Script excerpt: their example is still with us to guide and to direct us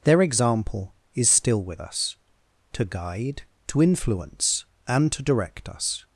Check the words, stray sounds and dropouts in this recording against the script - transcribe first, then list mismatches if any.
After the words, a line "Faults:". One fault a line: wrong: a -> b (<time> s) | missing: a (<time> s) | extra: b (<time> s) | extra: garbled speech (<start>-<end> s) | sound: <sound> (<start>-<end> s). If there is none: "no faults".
their example is still with us to guide to influence and to direct us
Faults:
extra: to influence (3.7 s)